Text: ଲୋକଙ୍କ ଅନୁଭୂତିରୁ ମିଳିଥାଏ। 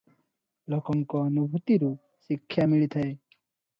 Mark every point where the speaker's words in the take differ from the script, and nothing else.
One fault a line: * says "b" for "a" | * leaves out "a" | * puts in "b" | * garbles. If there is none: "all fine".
* puts in "ଶିକ୍ଷା"